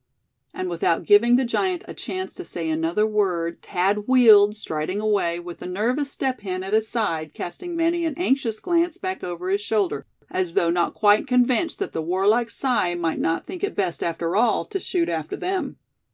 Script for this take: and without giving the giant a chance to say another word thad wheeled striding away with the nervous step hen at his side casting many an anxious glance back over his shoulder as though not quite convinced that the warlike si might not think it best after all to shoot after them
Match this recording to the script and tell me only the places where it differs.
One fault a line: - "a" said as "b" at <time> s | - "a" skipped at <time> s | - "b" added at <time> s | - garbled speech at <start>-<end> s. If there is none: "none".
none